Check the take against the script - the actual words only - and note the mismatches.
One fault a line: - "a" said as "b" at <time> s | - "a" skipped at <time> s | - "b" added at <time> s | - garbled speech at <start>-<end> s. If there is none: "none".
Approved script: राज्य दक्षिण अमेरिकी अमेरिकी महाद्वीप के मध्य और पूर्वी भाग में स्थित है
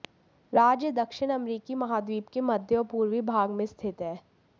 - "अमेरिकी" skipped at 1.8 s